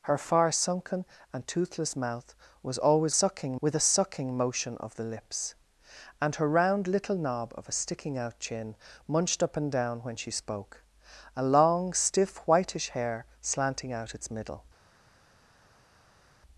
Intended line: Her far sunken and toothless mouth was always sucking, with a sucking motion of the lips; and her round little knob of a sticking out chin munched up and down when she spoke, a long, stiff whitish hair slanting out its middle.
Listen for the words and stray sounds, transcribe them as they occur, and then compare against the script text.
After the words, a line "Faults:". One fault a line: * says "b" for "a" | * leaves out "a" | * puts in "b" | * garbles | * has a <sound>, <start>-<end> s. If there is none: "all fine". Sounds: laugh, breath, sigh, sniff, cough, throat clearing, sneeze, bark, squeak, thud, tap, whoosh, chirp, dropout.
Her far sunken and toothless mouth was always sucking, with a sucking motion of the lips; and her round little knob of a sticking out chin munched up and down when she spoke, a long, stiff whitish hair slanting out its middle.
Faults:
all fine